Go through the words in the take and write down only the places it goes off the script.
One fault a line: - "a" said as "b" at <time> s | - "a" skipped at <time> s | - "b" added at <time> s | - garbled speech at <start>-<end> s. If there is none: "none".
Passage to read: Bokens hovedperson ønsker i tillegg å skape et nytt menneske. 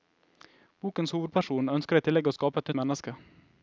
- "nytt" skipped at 2.7 s